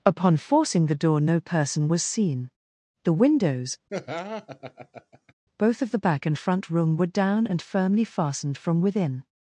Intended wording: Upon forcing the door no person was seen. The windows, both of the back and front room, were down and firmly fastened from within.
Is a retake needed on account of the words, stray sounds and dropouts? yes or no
yes